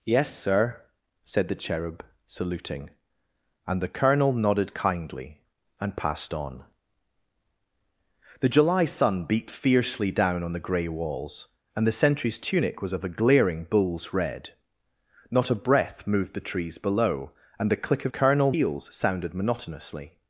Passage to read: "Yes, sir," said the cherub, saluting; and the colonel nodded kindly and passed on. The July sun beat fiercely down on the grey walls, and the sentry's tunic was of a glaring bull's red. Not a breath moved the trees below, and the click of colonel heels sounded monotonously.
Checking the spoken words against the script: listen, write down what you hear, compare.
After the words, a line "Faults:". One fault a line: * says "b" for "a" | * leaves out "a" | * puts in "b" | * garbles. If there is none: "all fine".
"Yes, sir," said the cherub, saluting; and the colonel nodded kindly and passed on. The July sun beat fiercely down on the grey walls, and the sentry's tunic was of a glaring bull's red. Not a breath moved the trees below, and the click of colonel heels sounded monotonously.
Faults:
all fine